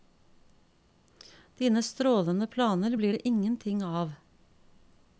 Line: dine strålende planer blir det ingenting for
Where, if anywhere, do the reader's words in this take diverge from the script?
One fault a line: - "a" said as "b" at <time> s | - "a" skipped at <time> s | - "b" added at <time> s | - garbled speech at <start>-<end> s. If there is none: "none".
- "for" said as "av" at 3.8 s